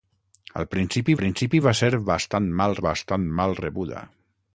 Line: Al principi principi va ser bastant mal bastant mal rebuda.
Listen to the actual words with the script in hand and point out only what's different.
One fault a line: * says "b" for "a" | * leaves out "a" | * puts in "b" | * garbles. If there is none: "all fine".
all fine